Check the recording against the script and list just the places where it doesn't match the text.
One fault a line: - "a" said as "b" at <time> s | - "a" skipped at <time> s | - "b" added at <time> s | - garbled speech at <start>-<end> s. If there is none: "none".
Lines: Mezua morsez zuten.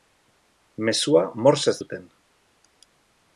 none